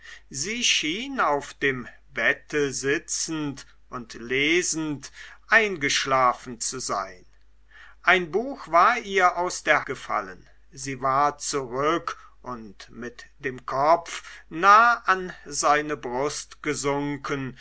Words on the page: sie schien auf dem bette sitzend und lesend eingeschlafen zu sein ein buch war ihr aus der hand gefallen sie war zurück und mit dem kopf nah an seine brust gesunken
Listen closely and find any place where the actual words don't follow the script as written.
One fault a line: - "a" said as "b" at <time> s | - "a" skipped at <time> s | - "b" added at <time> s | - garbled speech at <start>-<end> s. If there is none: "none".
- "hand" skipped at 9.8 s